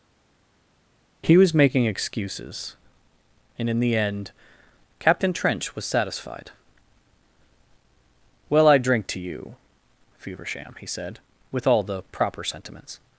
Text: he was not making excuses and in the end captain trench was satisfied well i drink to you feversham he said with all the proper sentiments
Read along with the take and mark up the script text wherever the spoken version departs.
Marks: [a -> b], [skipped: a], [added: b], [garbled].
he was [skipped: not] making excuses and in the end captain trench was satisfied well i drink to you feversham he said with all the proper sentiments